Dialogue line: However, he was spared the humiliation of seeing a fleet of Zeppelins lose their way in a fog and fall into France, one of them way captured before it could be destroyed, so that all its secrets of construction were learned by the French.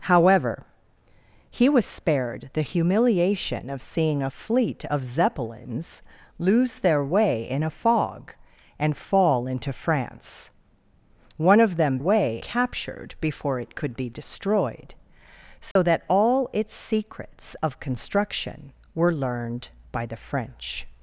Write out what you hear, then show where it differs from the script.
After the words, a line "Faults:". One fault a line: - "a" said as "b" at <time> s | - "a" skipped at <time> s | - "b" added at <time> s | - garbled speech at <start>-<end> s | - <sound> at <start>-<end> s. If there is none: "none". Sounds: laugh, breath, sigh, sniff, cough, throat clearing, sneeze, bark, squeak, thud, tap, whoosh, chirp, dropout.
However, he was spared the humiliation of seeing a fleet of Zeppelins lose their way in a fog and fall into France, one of them way captured before it could be destroyed, so that all its secrets of construction were learned by the French.
Faults:
- dropout at 15.7-15.8 s